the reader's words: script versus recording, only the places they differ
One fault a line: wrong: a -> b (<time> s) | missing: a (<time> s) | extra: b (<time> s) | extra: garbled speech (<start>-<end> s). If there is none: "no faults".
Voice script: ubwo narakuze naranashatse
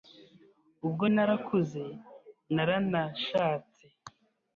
no faults